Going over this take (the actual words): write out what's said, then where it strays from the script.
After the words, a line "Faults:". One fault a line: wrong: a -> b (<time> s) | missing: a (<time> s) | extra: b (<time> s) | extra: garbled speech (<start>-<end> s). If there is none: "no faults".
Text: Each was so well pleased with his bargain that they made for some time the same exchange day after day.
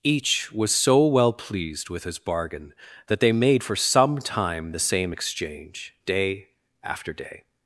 Each was so well pleased with his bargain that they made for some time the same exchange day after day.
Faults:
no faults